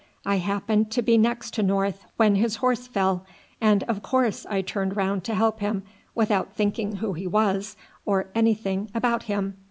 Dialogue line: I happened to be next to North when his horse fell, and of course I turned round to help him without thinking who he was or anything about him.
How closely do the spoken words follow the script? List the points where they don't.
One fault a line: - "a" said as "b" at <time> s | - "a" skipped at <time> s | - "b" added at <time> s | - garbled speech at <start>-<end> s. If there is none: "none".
none